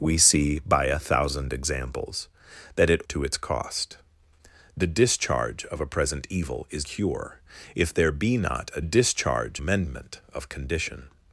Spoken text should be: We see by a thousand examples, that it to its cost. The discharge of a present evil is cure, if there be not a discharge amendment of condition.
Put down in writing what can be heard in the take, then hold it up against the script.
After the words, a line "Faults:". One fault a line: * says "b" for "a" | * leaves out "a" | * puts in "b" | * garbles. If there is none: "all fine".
We see by a thousand examples, that it to its cost. The discharge of a present evil is cure, if there be not a discharge amendment of condition.
Faults:
all fine